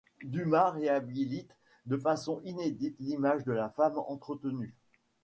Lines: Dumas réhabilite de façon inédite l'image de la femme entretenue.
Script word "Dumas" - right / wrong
right